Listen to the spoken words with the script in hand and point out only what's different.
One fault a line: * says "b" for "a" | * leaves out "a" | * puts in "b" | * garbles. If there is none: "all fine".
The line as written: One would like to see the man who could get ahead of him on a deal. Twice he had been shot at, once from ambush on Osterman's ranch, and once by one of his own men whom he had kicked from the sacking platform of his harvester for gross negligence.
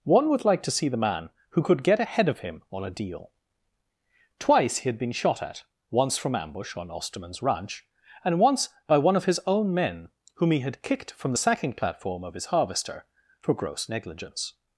all fine